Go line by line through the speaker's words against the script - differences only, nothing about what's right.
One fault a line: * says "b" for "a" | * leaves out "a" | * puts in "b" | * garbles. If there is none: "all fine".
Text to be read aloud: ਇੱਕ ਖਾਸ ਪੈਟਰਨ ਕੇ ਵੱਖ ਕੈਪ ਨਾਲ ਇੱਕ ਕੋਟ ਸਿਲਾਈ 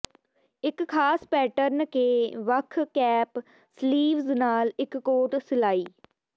* puts in "ਸਲੀਵਜ਼"